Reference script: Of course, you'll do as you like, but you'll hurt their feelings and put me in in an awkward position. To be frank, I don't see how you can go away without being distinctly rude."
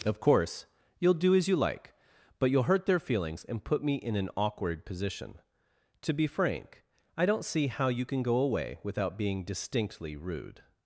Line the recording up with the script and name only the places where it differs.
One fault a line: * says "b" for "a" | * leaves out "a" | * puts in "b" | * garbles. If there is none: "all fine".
* leaves out "in"